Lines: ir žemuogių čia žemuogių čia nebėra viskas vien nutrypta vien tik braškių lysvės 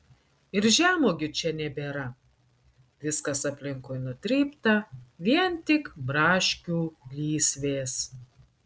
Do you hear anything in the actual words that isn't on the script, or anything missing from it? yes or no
yes